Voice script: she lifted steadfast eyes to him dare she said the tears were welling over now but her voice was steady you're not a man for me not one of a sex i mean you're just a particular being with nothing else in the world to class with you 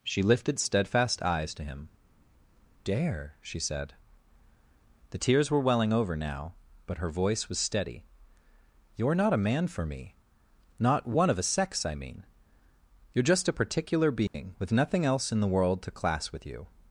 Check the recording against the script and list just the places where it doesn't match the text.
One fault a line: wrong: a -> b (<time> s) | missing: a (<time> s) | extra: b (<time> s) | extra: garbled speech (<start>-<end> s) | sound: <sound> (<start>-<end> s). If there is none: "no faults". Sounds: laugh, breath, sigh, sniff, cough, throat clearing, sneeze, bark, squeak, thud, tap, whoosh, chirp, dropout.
sound: dropout (14.3-14.3 s)